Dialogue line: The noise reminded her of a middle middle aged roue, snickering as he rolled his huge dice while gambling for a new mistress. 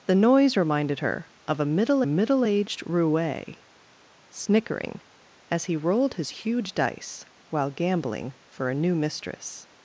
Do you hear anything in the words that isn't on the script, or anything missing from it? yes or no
no